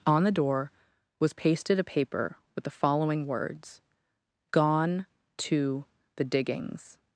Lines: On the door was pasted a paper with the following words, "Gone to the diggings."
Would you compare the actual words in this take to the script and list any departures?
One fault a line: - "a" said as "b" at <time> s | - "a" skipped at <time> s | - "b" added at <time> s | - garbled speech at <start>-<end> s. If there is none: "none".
none